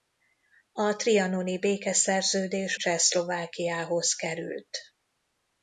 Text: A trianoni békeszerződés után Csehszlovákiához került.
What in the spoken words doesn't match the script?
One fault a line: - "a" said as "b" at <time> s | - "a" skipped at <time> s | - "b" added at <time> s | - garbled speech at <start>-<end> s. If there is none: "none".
- "után" skipped at 2.8 s